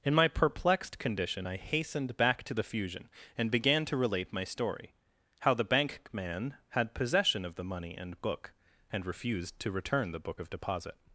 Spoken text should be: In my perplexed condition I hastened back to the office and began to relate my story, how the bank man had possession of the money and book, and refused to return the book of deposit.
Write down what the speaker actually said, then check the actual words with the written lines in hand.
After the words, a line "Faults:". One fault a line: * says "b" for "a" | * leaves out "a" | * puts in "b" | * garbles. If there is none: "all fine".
In my perplexed condition I hastened back to the fusion and began to relate my story, how the bank man had possession of the money and book, and refused to return the book of deposit.
Faults:
* says "fusion" for "office"